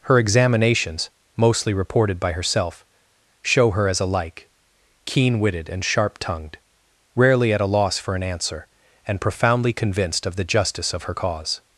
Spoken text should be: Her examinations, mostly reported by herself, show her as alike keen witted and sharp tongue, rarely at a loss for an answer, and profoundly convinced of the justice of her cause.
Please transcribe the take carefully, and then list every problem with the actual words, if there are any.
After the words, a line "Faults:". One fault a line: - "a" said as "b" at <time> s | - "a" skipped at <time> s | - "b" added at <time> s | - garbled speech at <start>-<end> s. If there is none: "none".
Her examinations, mostly reported by herself, show her as alike keen witted and sharp tongued, rarely at a loss for an answer, and profoundly convinced of the justice of her cause.
Faults:
- "tongue" said as "tongued" at 6.2 s